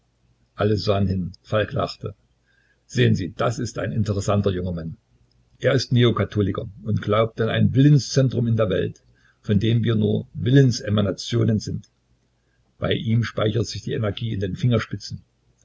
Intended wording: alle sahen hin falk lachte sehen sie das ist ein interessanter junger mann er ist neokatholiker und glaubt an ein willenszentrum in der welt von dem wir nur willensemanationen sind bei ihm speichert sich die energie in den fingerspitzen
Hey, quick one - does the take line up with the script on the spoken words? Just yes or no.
yes